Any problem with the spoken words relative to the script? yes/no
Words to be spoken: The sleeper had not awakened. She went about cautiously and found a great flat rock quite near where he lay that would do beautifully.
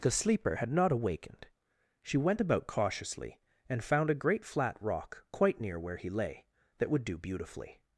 no